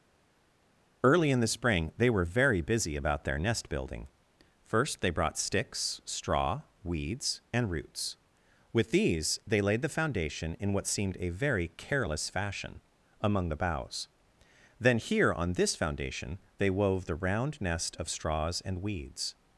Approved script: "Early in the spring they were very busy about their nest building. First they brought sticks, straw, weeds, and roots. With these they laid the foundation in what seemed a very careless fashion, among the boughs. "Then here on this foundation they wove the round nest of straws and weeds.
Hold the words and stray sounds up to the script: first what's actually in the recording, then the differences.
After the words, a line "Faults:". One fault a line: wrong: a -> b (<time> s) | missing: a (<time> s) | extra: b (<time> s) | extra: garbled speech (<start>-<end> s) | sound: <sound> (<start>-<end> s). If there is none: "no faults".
"Early in the spring they were very busy about their nest building. First they brought sticks, straw, weeds, and roots. With these they laid the foundation in what seemed a very careless fashion, among the boughs. "Then here on this foundation they wove the round nest of straws and weeds.
Faults:
no faults